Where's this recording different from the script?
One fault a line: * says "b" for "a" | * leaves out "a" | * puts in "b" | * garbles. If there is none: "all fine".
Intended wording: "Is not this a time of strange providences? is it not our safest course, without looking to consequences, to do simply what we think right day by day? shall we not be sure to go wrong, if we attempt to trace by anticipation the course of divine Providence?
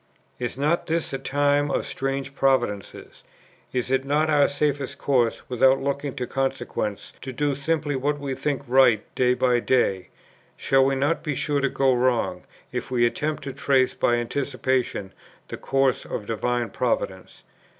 all fine